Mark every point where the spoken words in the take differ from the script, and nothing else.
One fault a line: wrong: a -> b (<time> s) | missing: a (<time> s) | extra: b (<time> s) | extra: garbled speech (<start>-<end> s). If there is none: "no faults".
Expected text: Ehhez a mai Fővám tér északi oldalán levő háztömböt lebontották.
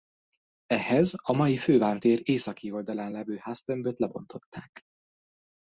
no faults